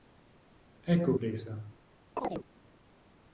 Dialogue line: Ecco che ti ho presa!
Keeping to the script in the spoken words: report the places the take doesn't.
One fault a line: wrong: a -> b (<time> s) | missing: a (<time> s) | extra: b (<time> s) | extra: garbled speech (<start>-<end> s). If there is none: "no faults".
missing: che ti ho (1.1 s)